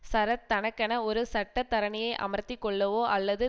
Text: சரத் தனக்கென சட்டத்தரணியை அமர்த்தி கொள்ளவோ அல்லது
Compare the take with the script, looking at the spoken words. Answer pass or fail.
fail